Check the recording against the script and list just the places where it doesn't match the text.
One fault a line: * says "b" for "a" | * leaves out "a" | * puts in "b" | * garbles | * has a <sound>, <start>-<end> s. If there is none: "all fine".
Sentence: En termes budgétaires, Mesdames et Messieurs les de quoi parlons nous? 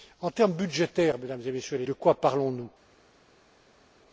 all fine